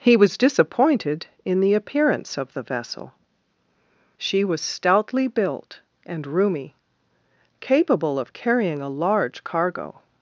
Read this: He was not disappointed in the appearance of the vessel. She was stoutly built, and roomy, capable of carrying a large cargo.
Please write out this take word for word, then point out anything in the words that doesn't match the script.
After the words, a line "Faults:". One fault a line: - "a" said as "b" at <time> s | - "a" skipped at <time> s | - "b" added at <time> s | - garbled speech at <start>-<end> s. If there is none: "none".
He was disappointed in the appearance of the vessel. She was stoutly built, and roomy, capable of carrying a large cargo.
Faults:
- "not" skipped at 0.3 s